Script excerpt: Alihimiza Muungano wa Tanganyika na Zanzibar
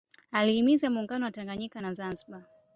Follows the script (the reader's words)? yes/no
yes